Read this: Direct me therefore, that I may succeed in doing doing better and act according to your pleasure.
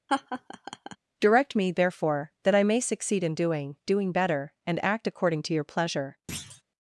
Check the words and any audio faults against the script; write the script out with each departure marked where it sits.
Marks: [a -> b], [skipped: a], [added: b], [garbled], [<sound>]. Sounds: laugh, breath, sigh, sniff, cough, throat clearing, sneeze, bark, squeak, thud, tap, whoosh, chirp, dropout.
[laugh] Direct me therefore, that I may succeed in doing doing better and act according to your pleasure. [thud]